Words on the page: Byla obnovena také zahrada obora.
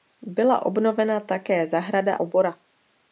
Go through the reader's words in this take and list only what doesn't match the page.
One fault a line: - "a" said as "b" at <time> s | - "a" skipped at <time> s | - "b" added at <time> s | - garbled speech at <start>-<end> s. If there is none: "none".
none